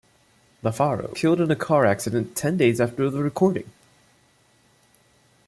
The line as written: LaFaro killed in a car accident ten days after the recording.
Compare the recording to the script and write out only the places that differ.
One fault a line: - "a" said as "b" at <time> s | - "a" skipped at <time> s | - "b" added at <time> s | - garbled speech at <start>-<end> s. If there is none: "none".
none